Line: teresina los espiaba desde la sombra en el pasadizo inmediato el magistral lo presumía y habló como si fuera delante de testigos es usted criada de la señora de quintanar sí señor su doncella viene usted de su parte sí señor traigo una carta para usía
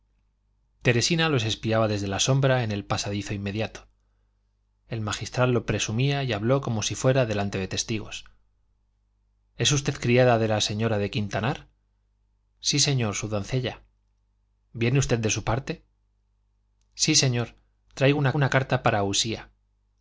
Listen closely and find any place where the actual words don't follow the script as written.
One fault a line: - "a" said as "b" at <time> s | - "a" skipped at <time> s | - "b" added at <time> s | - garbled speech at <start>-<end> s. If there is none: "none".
- "una" added at 18.3 s